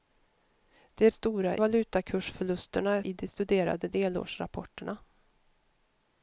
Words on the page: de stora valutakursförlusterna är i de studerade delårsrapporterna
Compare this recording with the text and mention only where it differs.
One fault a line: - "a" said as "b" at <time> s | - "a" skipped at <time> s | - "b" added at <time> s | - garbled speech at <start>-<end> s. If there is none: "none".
none